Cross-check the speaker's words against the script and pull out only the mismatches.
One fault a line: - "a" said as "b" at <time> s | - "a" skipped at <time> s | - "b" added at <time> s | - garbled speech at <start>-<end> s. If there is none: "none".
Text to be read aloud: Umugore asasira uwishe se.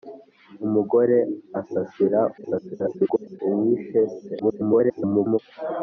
- garbled speech at 2.4-3.4 s
- garbled speech at 4.4-5.4 s